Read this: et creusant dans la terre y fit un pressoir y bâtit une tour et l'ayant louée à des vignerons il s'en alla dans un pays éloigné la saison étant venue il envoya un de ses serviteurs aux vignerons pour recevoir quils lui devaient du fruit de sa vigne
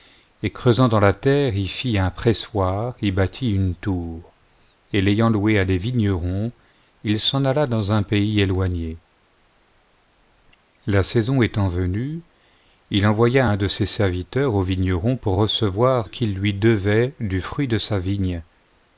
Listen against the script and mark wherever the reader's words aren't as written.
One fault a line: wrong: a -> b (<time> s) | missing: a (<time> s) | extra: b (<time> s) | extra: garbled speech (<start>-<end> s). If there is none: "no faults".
no faults